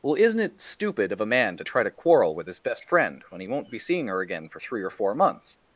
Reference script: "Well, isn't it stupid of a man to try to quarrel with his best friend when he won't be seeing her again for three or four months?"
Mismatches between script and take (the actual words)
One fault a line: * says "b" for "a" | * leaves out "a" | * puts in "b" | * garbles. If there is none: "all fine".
all fine